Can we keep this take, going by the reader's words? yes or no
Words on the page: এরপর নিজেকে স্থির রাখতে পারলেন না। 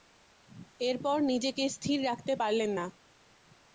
yes